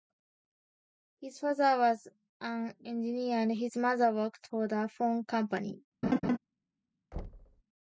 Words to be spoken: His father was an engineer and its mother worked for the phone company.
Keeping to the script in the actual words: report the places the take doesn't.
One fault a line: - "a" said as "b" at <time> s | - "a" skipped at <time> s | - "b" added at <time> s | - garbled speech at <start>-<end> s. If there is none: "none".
- "its" said as "his" at 3.5 s